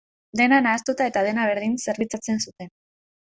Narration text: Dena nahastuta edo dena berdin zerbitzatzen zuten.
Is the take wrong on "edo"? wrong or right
wrong